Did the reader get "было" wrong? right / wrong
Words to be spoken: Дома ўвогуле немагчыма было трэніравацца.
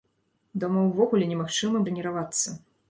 wrong